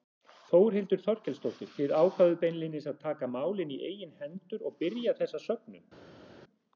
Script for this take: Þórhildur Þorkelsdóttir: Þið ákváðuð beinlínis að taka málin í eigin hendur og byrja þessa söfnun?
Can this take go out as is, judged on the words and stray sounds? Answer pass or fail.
pass